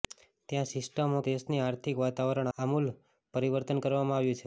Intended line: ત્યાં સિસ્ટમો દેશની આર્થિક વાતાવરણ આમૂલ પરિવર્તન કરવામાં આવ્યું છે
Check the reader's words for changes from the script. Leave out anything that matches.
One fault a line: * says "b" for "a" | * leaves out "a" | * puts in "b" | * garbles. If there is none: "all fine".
all fine